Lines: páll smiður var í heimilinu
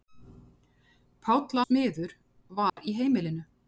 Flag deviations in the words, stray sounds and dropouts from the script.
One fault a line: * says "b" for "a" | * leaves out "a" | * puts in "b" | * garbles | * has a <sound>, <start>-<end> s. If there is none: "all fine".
* has a dropout, 2.7-2.8 s